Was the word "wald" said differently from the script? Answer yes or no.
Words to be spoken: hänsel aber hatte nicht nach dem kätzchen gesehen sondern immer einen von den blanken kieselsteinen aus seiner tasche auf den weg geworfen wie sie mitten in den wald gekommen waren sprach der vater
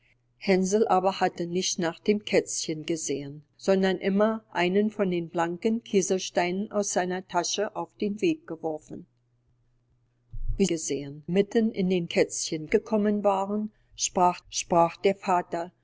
yes